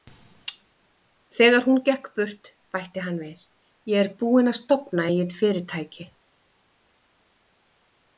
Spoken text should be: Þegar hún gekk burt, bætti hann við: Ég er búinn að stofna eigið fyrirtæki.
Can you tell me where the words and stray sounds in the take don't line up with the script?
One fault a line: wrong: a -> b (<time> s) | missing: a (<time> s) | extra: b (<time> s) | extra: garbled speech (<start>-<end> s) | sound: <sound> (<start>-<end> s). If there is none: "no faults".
no faults